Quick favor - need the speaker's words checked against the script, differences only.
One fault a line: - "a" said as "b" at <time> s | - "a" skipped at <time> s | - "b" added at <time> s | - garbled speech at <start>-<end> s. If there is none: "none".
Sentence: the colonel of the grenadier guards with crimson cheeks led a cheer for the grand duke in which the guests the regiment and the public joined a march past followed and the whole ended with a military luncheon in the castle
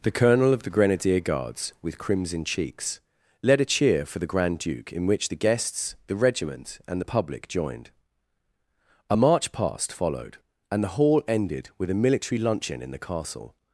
- "whole" said as "hall" at 11.0 s